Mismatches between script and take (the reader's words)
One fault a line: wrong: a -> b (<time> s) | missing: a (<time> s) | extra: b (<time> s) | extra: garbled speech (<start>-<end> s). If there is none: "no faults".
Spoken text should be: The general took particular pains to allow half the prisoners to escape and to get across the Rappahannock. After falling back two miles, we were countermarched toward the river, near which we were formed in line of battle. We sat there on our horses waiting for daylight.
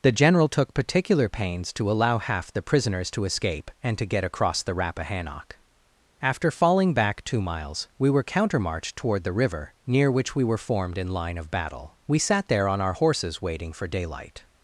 no faults